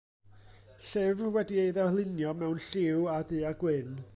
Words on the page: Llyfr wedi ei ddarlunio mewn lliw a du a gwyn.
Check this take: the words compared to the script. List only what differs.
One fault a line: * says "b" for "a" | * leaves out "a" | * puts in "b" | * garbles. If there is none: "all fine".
all fine